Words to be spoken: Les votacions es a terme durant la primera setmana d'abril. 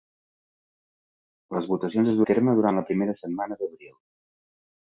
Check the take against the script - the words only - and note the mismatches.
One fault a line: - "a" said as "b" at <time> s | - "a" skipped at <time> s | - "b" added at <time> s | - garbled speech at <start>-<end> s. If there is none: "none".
none